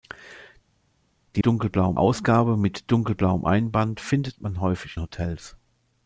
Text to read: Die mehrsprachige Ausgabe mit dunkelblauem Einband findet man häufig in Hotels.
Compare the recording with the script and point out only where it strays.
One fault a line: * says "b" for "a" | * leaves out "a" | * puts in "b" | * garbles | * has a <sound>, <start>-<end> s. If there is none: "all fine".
* says "dunkelblauem" for "mehrsprachige"
* leaves out "in"